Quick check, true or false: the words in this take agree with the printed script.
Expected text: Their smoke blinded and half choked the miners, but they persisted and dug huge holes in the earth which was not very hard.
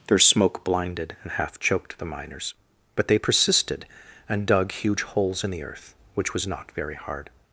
true